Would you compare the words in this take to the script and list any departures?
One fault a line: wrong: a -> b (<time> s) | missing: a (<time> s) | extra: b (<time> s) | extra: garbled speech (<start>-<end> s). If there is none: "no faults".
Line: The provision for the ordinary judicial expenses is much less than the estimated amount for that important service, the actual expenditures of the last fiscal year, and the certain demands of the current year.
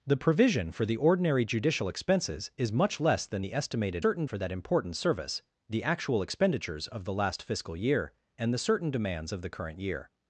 wrong: amount -> certain (4.0 s)